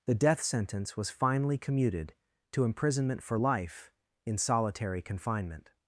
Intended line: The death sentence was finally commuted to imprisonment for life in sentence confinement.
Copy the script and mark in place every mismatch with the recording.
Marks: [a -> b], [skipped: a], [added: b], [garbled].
The death sentence was finally commuted to imprisonment for life in [sentence -> solitary] confinement.